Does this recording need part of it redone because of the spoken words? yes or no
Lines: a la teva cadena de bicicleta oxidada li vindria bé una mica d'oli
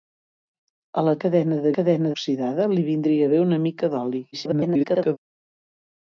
yes